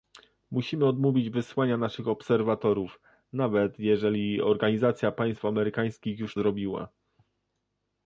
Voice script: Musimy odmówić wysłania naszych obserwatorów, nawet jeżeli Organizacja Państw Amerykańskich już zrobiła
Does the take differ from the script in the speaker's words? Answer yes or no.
no